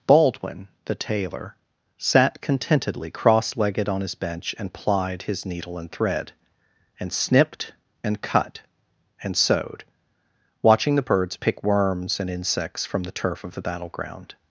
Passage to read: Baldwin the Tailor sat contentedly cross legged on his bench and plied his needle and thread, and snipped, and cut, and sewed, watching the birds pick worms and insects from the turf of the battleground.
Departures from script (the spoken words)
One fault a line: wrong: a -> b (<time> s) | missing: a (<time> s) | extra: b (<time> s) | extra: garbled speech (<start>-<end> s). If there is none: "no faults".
no faults